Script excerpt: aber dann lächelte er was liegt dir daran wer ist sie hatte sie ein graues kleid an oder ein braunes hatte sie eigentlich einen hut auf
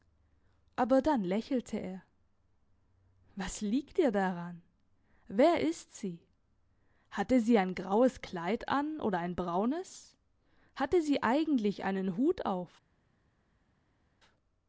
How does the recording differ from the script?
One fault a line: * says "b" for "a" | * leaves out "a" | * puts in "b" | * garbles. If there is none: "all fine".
all fine